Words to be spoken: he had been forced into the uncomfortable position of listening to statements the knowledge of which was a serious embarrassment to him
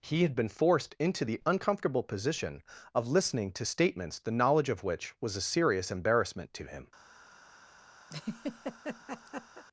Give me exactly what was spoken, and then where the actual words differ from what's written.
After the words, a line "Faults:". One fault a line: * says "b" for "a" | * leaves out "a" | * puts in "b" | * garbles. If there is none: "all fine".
he had been forced into the uncomfortable position of listening to statements the knowledge of which was a serious embarrassment to him
Faults:
all fine